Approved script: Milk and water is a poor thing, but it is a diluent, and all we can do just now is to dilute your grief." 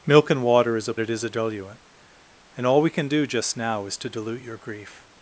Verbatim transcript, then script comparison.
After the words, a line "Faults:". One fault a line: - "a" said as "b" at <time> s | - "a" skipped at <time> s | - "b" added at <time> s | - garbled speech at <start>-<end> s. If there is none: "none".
Milk and water is a it is a diluent, and all we can do just now is to dilute your grief."
Faults:
- "poor thing but" skipped at 0.9 s